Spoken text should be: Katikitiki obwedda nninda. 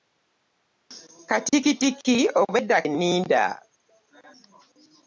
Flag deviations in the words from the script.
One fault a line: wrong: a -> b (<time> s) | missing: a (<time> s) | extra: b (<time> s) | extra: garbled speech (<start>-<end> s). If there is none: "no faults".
no faults